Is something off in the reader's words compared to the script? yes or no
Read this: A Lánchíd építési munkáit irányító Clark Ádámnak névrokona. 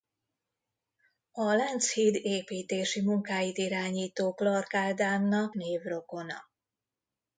no